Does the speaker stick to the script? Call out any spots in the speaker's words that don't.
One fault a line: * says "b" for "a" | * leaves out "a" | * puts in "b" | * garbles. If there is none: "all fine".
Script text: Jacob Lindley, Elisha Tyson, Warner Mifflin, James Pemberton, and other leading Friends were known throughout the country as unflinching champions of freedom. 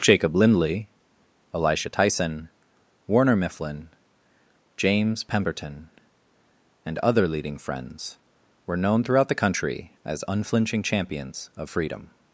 all fine